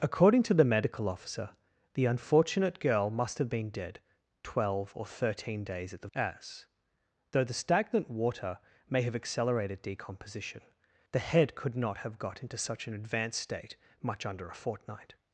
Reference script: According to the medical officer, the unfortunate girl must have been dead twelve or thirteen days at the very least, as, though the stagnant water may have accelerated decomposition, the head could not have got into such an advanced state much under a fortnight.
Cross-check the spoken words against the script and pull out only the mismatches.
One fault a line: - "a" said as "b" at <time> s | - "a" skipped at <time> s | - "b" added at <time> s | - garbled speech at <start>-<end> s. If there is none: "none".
- "very least" skipped at 6.1 s